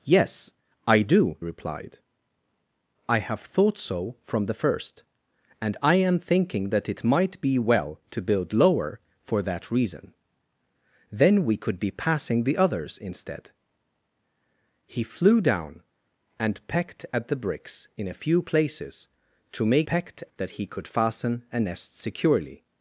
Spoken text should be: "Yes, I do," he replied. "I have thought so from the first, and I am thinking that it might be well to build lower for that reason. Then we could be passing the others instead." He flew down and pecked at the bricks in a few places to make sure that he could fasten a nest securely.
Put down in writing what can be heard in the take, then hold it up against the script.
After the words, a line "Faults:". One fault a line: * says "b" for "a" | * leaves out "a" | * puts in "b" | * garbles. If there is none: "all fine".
"Yes, I do," replied. "I have thought so from the first, and I am thinking that it might be well to build lower for that reason. Then we could be passing the others instead." He flew down and pecked at the bricks in a few places to make pecked that he could fasten a nest securely.
Faults:
* leaves out "he"
* says "pecked" for "sure"